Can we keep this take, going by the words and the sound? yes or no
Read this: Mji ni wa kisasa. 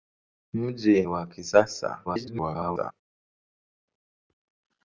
no